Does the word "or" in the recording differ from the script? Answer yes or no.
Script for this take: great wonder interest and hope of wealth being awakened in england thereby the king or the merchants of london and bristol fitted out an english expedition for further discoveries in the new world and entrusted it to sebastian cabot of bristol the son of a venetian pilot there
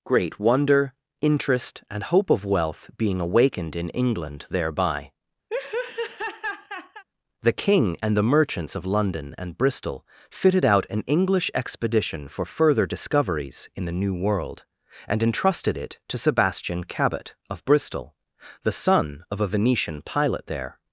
yes